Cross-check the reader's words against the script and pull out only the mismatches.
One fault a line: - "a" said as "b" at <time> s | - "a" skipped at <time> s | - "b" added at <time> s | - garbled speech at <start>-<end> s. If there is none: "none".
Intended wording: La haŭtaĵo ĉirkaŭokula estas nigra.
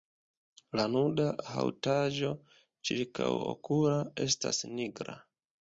- "nuda" added at 0.9 s